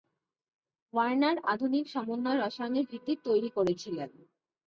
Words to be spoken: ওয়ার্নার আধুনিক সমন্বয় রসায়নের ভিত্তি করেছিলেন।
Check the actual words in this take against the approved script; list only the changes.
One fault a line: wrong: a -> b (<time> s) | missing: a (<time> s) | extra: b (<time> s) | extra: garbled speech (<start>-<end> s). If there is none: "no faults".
extra: তৈরি (3.2 s)